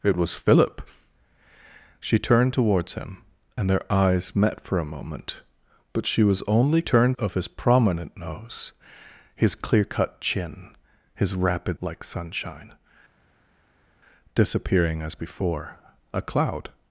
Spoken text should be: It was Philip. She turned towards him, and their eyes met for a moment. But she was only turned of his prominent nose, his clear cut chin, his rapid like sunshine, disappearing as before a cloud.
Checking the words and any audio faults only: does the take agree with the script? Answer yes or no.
yes